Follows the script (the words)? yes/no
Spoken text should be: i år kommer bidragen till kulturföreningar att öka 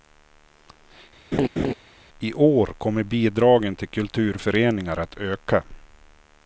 yes